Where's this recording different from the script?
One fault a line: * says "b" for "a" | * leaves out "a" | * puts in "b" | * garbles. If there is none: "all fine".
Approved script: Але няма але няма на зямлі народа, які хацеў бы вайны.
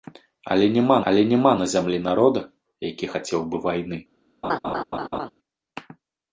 all fine